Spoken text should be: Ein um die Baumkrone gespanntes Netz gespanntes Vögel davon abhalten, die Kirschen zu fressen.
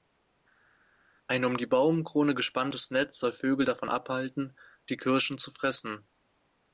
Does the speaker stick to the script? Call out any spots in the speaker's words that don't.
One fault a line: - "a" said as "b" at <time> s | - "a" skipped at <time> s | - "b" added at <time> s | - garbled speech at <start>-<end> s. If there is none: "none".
- "gespanntes" said as "soll" at 3.2 s